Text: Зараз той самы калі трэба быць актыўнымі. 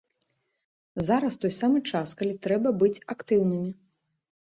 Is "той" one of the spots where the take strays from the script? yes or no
no